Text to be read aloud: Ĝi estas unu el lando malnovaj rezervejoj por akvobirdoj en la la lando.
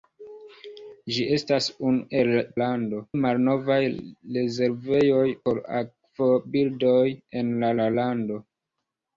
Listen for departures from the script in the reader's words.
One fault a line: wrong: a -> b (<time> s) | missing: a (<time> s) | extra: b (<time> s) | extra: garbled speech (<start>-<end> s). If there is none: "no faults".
no faults